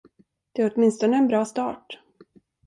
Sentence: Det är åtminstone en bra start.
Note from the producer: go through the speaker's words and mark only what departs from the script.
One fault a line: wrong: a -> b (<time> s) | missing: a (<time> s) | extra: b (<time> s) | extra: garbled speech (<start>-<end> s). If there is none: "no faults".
no faults